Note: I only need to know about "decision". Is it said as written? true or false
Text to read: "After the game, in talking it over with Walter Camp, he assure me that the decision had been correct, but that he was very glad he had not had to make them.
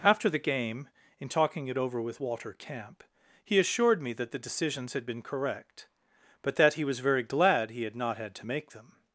false